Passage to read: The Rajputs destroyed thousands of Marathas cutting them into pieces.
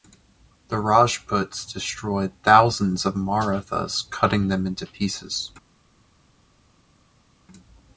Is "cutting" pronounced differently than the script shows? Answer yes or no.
no